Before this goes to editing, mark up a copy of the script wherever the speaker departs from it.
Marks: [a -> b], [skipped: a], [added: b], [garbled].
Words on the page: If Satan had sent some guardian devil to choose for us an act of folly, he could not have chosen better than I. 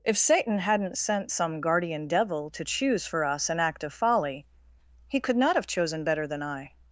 If Satan [had -> hadn't] sent some guardian devil to choose for us an act of folly, he could not have chosen better than I.